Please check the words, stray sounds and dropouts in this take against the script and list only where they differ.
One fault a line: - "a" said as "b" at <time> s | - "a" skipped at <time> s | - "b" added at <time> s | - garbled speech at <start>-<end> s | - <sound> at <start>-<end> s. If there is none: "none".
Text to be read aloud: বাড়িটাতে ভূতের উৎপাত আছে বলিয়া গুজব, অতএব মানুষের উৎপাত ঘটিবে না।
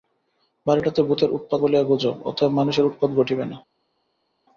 - "আছে" skipped at 1.6 s